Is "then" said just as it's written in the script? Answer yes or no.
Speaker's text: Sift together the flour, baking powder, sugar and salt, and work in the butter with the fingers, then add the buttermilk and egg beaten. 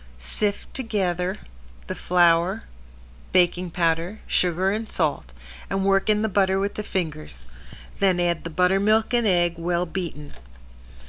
yes